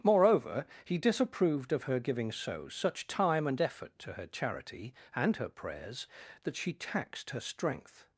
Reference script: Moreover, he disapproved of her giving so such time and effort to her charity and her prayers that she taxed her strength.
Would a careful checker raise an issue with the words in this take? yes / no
no